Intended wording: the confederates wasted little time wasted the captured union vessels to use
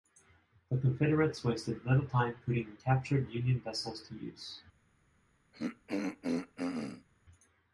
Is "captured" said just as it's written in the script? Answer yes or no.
yes